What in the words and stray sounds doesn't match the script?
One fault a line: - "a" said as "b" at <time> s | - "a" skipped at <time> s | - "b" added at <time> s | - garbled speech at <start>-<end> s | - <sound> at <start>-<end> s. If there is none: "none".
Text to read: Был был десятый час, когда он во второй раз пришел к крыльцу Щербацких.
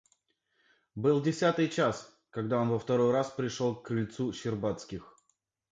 - "был" skipped at 1.2 s